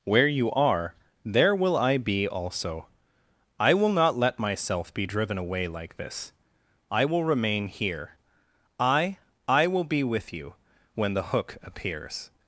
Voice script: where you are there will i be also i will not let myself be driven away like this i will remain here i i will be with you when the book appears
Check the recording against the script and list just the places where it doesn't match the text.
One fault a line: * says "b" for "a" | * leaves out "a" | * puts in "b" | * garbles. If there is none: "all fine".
* says "hook" for "book"